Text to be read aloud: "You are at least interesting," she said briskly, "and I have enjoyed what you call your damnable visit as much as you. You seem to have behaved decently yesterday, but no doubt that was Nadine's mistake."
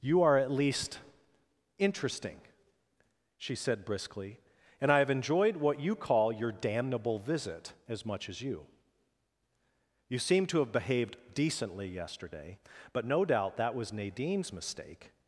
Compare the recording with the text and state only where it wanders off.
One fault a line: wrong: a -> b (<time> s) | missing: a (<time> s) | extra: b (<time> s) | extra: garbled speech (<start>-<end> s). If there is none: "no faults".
no faults